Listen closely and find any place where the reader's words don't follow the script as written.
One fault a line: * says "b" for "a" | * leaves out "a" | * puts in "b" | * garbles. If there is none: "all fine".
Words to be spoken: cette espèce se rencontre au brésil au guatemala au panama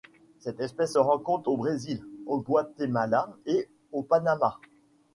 * puts in "et"